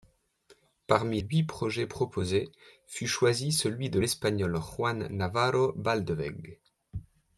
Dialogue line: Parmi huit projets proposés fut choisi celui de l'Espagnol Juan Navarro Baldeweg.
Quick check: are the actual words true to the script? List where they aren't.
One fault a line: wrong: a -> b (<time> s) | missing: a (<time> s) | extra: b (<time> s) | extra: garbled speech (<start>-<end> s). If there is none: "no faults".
no faults